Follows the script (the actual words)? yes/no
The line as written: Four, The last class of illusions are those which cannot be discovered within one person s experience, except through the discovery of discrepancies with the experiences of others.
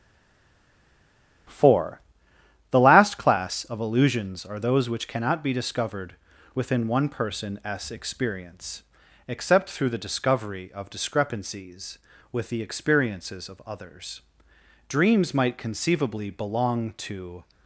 no